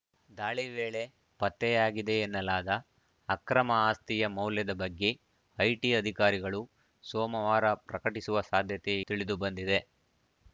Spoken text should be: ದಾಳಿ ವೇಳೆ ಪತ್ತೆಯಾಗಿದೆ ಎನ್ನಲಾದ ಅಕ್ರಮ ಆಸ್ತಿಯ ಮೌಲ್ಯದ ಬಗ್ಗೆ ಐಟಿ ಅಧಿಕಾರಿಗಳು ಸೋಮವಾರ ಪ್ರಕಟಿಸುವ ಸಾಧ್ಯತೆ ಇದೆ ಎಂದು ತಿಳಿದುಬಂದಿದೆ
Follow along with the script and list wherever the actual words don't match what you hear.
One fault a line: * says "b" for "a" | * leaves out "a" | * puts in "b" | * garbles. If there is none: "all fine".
* leaves out "ಇದೆ ಎಂದು"